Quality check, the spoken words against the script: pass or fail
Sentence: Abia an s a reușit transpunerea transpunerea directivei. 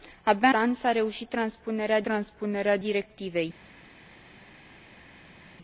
pass